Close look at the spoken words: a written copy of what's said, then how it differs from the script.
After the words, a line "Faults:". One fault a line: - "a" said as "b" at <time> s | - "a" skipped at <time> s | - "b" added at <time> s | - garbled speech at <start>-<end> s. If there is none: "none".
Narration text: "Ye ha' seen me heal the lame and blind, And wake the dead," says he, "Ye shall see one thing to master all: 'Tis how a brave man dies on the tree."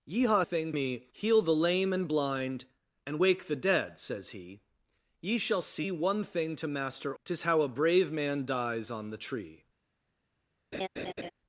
"Ye ha' thing me heal the lame and blind, And wake the dead," says he, "Ye shall see one thing to master: 'Tis how a brave man dies on the tree."
Faults:
- "seen" said as "thing" at 0.4 s
- "all" skipped at 7.1 s